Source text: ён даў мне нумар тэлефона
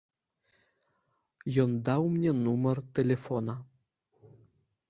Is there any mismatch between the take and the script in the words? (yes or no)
no